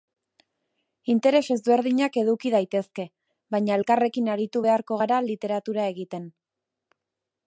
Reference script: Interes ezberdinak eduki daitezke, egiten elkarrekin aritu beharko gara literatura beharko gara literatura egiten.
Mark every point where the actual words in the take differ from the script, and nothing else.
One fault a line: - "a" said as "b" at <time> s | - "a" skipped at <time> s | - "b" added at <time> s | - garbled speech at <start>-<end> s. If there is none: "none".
- "egiten" said as "baina" at 3.5 s
- "beharko gara literatura" skipped at 5.9 s